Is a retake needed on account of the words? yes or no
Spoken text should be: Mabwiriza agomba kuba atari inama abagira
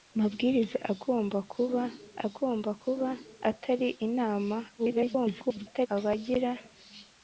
yes